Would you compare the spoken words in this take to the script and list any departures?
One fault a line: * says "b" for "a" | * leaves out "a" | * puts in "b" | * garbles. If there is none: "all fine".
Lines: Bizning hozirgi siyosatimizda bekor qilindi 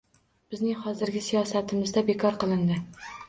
all fine